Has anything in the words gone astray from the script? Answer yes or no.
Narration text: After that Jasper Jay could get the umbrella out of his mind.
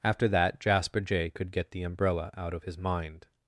no